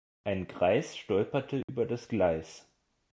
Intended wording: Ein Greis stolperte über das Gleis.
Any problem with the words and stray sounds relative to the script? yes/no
yes